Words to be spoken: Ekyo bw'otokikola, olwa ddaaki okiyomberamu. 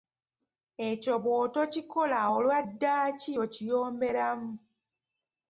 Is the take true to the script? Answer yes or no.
yes